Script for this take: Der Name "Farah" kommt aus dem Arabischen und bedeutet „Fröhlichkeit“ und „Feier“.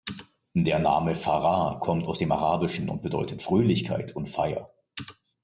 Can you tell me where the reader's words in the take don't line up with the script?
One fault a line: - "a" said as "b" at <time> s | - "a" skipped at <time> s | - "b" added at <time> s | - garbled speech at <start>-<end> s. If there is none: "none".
none